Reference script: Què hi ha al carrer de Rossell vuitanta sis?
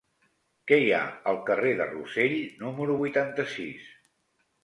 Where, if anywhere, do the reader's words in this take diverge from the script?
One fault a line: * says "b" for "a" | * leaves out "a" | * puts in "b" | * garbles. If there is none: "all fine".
* puts in "número"